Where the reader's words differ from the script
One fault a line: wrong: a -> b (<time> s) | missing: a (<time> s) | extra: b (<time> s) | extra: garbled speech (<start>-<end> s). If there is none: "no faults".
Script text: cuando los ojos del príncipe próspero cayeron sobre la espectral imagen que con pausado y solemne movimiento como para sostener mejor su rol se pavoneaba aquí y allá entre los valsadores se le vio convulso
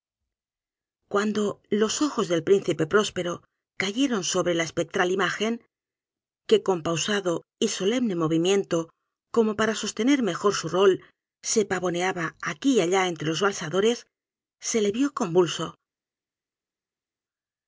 no faults